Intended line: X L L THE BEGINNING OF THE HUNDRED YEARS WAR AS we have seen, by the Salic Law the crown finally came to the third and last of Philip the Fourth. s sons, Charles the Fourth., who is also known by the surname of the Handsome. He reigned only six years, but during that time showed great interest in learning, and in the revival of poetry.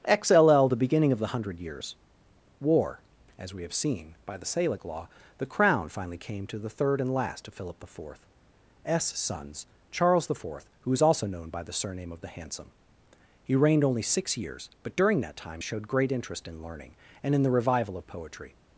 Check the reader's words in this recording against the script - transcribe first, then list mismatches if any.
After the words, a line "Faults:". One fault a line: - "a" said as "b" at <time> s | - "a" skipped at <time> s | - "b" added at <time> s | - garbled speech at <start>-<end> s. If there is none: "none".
X L L THE BEGINNING OF THE HUNDRED YEARS WAR AS we have seen, by the Salic Law the crown finally came to the third and last of Philip the Fourth. s sons, Charles the Fourth., who is also known by the surname of the Handsome. He reigned only six years, but during that time showed great interest in learning, and in the revival of poetry.
Faults:
none